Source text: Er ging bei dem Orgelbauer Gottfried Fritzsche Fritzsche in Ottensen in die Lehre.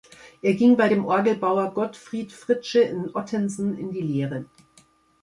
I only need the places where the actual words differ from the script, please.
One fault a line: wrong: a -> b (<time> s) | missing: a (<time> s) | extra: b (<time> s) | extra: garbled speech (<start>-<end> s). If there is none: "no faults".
missing: Fritzsche (2.8 s)